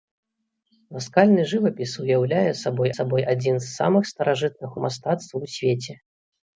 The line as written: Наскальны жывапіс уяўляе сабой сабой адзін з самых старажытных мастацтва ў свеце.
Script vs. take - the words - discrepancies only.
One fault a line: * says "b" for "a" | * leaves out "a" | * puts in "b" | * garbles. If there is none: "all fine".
all fine